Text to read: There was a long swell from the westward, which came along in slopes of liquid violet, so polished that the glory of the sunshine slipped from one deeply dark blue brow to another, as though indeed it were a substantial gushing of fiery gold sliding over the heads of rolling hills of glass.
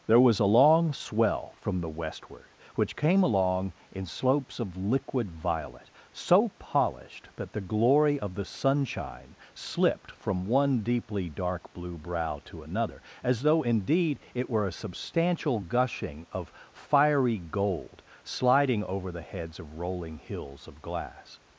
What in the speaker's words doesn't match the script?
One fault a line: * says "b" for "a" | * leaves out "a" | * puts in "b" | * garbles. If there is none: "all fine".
all fine